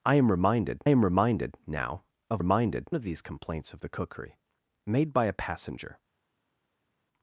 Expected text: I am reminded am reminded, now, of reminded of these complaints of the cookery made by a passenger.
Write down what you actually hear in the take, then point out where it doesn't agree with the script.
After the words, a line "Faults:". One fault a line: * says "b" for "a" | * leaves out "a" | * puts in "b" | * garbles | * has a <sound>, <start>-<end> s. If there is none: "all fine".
I am reminded am reminded, now, of reminded of these complaints of the cookery made by a passenger.
Faults:
all fine